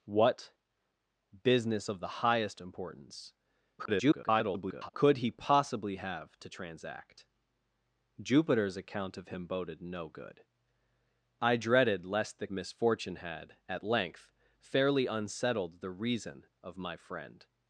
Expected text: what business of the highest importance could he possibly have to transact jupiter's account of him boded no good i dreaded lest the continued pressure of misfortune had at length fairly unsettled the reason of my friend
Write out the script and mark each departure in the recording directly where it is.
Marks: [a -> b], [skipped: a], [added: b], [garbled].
what business of the highest importance [garbled] could he possibly have to transact jupiter's account of him boded no good i dreaded lest the [skipped: continued pressure of] misfortune had at length fairly unsettled the reason of my friend